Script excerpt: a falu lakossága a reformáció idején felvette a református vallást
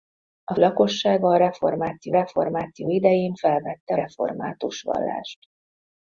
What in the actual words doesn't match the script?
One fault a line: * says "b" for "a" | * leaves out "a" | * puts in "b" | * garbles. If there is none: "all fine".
* leaves out "falu"
* puts in "reformáció"
* leaves out "a"